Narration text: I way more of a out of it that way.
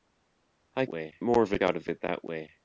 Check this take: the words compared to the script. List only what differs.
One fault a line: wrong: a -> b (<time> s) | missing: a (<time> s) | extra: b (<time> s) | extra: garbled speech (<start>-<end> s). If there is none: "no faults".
no faults